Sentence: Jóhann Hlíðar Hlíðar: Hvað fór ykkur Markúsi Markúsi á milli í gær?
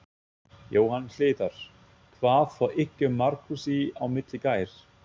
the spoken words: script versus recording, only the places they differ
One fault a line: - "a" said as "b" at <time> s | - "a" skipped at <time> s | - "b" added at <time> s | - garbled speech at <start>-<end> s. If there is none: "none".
- "Hlíðar" skipped at 1.6 s
- "Markúsi" skipped at 3.8 s